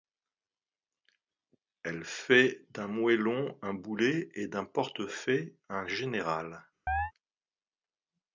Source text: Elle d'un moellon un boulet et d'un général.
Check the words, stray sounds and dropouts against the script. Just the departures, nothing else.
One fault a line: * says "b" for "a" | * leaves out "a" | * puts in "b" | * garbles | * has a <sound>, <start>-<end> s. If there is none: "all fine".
* puts in "fait"
* puts in "portefaix un"
* has a chirp, 6.9-7.1 s